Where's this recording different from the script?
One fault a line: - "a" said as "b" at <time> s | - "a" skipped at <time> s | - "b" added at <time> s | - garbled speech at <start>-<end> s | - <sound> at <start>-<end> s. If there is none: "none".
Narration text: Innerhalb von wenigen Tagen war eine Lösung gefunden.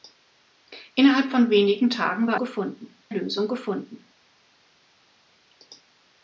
- "eine" said as "gefunden" at 2.4 s